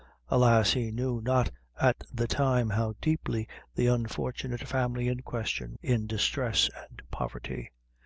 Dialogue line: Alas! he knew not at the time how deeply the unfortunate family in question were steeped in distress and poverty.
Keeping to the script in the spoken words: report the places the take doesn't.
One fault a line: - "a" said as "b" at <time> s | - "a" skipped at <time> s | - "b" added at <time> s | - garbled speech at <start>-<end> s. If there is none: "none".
- "were steeped" skipped at 5.8 s